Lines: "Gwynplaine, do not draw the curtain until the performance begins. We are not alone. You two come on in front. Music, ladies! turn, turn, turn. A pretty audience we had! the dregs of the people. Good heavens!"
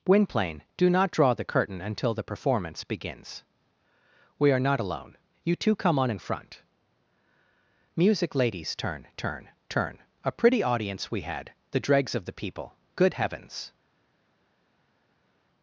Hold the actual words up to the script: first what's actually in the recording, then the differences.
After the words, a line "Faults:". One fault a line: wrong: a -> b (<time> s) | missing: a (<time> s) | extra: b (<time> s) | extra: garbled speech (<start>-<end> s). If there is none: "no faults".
"Gwynplaine, do not draw the curtain until the performance begins. We are not alone. You two come on in front. Music, ladies! turn, turn, turn. A pretty audience we had! the dregs of the people. Good heavens!"
Faults:
no faults